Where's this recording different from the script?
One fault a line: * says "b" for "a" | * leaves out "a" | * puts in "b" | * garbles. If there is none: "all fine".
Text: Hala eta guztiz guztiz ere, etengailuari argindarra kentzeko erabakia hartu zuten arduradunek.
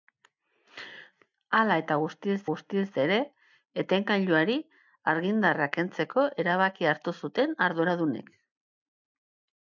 all fine